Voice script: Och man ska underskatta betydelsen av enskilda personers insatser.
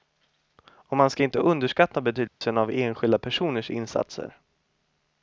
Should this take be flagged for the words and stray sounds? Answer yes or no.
yes